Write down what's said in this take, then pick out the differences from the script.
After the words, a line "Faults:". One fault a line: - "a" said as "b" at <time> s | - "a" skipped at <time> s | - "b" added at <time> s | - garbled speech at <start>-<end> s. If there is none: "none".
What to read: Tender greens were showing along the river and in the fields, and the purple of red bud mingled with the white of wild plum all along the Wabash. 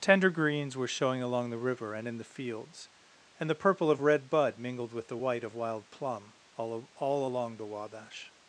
Tender greens were showing along the river and in the fields, and the purple of red bud mingled with the white of wild plum all all along the Wabash.
Faults:
- "all" added at 6.9 s